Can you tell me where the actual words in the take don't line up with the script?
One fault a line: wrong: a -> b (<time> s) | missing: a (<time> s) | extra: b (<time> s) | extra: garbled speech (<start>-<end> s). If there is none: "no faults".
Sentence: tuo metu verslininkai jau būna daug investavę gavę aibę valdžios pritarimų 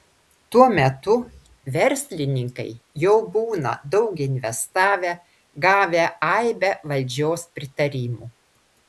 no faults